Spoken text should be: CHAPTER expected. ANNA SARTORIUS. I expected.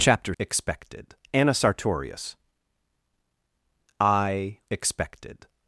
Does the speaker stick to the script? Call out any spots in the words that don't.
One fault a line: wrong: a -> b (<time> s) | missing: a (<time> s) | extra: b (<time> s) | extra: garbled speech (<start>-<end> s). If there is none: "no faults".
no faults